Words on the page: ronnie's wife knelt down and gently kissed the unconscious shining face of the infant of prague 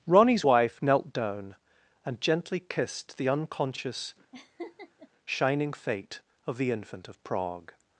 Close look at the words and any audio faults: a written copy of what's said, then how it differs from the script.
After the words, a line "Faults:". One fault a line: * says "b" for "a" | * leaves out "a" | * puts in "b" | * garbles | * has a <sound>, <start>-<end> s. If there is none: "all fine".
ronnie's wife knelt down and gently kissed the unconscious shining fate of the infant of prague
Faults:
* has a laugh, 4.3-5.1 s
* says "fate" for "face"